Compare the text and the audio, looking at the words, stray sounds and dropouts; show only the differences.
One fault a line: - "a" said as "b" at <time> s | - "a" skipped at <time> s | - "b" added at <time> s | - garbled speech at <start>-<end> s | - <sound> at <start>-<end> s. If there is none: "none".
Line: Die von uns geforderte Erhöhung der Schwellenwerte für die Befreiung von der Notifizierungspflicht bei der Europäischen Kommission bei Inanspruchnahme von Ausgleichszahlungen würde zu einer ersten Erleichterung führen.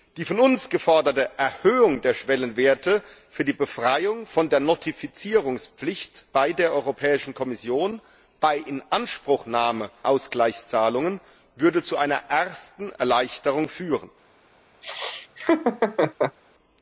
- "von" skipped at 9.9 s
- laugh at 14.8-16.4 s